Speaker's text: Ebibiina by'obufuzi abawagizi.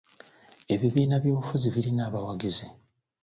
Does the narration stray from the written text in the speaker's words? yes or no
yes